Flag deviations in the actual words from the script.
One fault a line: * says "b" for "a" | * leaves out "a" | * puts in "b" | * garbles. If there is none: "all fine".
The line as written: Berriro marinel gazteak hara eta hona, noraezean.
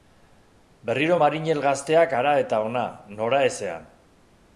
all fine